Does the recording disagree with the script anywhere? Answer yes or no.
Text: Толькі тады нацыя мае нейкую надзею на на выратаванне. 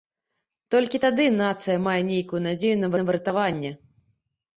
no